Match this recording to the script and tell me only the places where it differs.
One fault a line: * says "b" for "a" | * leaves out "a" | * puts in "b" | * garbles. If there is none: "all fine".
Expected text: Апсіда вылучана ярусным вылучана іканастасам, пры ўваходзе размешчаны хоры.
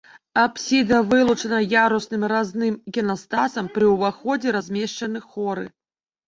* says "разным" for "вылучана"